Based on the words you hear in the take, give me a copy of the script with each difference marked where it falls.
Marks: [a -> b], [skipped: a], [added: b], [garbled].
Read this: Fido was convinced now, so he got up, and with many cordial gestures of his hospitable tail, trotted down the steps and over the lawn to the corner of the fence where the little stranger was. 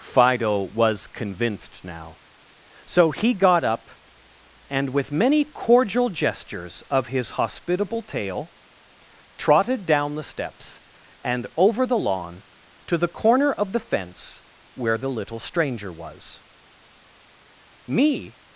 Fido was convinced now, so he got up, and with many cordial gestures of his hospitable tail, trotted down the steps and over the lawn to the corner of the fence where the little stranger was. [added: Me]